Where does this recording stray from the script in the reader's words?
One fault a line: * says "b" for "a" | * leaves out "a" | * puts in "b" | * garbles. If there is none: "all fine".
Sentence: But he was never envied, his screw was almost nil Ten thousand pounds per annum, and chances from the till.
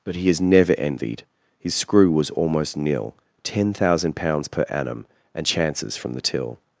* says "is" for "was"